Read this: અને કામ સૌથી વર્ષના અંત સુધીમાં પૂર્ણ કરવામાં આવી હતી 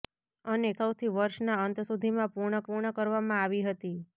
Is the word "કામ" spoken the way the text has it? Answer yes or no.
no